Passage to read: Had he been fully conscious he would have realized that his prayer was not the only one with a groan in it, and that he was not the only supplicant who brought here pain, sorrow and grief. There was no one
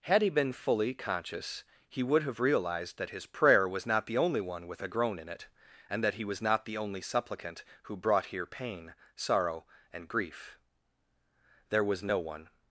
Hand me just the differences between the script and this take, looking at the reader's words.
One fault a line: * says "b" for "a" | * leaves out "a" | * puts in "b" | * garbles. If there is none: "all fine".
all fine